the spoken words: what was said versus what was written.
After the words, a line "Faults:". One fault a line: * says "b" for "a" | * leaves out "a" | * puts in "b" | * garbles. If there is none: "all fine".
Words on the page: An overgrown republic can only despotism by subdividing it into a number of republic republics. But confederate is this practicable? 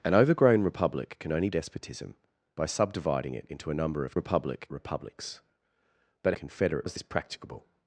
An overgrown republic can only despotism by subdividing it into a number of republic republics. But confederate is this practicable?
Faults:
all fine